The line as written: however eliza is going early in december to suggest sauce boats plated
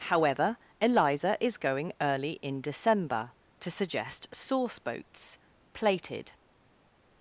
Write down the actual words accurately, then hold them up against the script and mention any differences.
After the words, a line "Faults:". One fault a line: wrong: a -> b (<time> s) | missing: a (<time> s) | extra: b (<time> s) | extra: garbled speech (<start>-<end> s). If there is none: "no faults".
however eliza is going early in december to suggest sauce boats plated
Faults:
no faults